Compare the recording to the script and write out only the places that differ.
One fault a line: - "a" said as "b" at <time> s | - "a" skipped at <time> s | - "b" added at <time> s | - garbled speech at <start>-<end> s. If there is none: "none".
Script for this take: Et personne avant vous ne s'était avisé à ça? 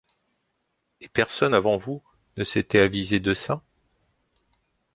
- "à" said as "de" at 3.2 s